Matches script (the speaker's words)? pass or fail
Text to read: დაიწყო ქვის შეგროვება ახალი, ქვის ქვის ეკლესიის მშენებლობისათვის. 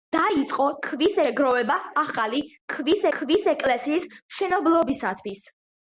pass